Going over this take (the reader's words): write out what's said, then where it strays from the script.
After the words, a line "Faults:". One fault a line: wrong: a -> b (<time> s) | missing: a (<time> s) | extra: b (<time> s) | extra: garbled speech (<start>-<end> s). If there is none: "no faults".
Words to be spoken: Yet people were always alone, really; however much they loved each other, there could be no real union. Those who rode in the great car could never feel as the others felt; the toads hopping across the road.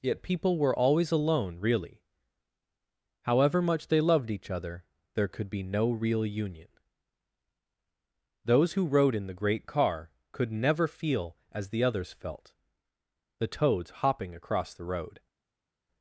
Yet people were always alone, really; however much they loved each other, there could be no real union. Those who rode in the great car could never feel as the others felt; the toads hopping across the road.
Faults:
no faults